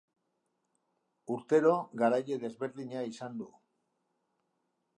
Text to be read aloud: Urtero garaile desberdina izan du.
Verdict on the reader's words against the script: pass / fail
pass